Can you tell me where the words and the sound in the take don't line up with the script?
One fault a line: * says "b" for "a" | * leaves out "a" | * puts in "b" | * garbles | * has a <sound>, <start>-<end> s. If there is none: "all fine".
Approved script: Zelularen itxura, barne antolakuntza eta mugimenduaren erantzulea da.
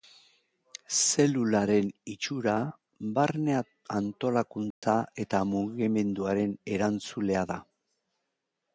* has a dropout, 4.7-4.8 s